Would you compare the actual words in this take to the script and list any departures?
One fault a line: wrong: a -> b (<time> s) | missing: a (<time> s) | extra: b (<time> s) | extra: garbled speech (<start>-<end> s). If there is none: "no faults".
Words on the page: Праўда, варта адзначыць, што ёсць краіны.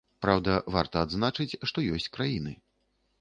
no faults